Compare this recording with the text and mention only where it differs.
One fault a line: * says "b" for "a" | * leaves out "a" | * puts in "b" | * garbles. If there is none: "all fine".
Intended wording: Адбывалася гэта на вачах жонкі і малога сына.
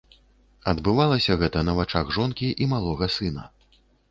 all fine